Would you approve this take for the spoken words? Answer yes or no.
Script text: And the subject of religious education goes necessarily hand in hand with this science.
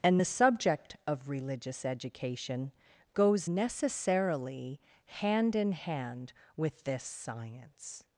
yes